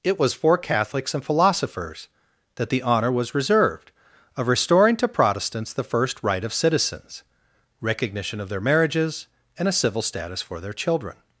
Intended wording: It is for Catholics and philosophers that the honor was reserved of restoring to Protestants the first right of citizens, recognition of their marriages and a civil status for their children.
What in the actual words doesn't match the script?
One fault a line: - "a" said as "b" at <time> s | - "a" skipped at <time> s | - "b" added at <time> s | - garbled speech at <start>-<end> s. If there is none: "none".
- "is" said as "was" at 0.2 s